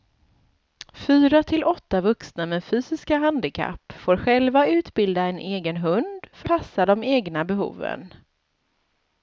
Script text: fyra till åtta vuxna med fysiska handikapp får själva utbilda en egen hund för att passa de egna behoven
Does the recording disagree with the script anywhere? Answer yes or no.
yes